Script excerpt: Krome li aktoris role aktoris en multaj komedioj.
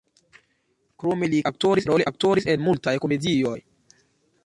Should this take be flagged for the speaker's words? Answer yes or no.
no